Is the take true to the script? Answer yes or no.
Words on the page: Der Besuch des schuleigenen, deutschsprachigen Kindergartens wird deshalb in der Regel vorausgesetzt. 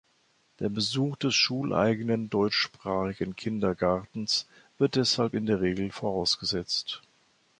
yes